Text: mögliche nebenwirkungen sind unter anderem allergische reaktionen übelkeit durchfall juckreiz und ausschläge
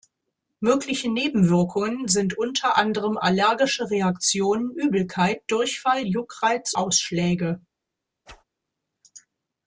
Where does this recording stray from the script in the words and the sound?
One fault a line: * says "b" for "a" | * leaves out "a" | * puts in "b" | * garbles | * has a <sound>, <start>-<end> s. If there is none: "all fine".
* leaves out "und"
* has a whoosh, 8.3-8.4 s